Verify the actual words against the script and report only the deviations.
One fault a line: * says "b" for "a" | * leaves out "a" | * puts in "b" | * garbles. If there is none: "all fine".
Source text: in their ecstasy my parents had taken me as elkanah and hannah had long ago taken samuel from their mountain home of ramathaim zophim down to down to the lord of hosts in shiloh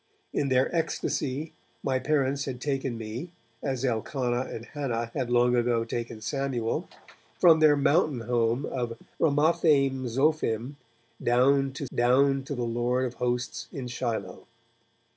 all fine